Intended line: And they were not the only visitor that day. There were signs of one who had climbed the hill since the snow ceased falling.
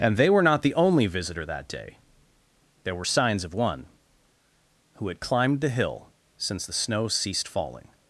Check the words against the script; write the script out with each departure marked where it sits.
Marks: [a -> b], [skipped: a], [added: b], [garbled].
And they were not the only visitor that day. There were signs of one who had climbed the hill since the snow ceased falling.